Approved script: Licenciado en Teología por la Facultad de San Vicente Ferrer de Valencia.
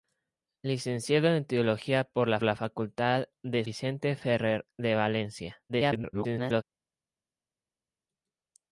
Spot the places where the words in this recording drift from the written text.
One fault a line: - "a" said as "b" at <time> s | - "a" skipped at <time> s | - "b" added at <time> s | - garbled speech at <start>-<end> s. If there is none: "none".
- "la" added at 2.4 s
- "San" skipped at 3.7 s
- garbled speech at 5.7-6.6 s